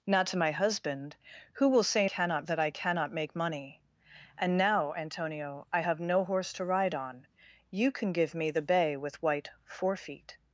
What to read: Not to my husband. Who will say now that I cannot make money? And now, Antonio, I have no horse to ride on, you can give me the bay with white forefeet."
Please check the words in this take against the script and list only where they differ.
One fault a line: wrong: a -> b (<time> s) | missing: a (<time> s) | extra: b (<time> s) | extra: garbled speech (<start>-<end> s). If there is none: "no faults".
wrong: now -> cannot (2.0 s)